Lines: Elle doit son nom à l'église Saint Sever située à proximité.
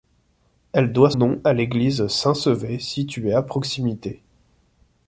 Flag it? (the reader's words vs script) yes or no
yes